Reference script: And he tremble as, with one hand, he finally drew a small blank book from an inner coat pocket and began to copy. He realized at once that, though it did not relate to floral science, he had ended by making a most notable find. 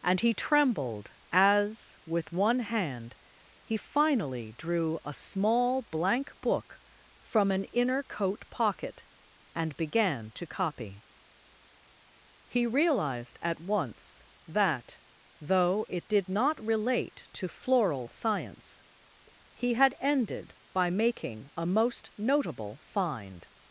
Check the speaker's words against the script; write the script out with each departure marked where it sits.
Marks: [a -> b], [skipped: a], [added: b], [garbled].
And he [tremble -> trembled] as, with one hand, he finally drew a small blank book from an inner coat pocket and began to copy. He realized at once that, though it did not relate to floral science, he had ended by making a most notable find.